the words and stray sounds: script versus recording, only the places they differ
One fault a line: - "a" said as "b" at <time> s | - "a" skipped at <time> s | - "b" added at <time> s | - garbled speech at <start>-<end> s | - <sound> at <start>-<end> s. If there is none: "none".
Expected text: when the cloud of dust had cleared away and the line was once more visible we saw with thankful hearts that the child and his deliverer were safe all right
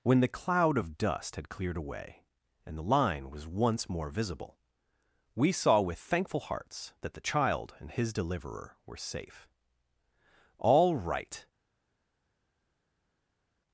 none